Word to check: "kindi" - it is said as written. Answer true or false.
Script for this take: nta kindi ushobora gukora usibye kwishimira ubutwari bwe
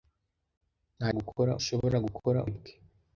false